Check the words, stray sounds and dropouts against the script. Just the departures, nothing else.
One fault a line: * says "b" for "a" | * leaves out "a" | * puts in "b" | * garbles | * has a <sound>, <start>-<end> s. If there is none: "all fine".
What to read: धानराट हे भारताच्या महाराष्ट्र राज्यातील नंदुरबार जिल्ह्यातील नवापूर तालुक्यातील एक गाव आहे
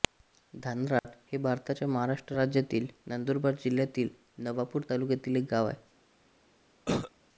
* has a dropout, 1.0-1.0 s
* has a cough, 6.9-7.1 s